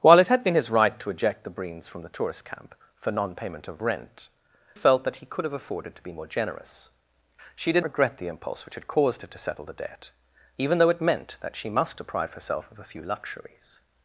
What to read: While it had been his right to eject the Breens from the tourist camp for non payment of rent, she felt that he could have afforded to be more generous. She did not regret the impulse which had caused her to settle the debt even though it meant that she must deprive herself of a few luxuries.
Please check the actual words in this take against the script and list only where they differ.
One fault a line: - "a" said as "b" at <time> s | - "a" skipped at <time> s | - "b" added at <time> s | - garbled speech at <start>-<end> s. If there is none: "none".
- "she" skipped at 4.3 s
- "not" skipped at 7.8 s